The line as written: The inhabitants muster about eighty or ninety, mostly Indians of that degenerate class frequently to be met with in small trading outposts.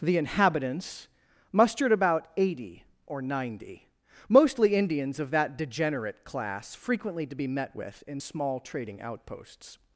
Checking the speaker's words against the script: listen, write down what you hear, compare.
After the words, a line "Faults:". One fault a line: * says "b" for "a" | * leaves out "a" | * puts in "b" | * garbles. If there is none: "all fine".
The inhabitants mustered about eighty or ninety, mostly Indians of that degenerate class frequently to be met with in small trading outposts.
Faults:
* says "mustered" for "muster"